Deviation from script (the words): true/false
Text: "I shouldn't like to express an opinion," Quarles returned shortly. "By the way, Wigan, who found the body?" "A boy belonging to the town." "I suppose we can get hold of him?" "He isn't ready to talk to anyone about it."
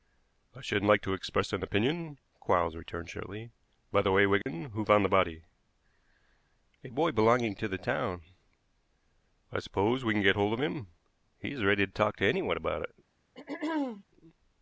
true